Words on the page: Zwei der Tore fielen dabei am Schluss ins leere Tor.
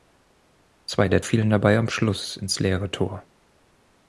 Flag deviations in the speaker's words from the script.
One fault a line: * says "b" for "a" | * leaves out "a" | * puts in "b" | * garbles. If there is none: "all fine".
* leaves out "Tore"